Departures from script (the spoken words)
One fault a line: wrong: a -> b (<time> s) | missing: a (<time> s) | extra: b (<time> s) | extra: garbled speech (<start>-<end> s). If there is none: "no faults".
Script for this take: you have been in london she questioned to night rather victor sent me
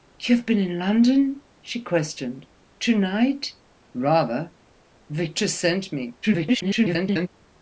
extra: garbled speech (6.2-7.3 s)